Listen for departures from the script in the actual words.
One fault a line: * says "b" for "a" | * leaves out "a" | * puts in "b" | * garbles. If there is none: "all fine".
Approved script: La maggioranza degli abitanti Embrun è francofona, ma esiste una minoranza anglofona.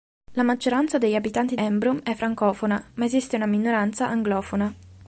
all fine